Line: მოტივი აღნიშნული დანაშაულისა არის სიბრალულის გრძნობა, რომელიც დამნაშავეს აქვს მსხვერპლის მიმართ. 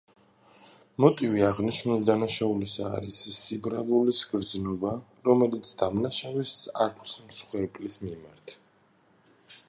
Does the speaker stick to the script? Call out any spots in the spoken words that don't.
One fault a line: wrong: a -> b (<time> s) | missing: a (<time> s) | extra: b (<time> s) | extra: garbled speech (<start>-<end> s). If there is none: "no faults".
no faults